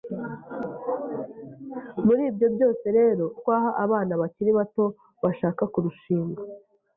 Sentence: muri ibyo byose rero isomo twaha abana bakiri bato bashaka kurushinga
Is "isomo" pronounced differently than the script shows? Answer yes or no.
yes